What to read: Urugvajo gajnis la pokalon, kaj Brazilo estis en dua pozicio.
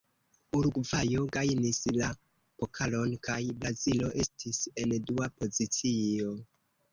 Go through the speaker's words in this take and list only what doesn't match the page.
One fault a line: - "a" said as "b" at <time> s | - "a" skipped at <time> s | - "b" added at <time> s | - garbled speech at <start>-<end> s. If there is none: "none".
none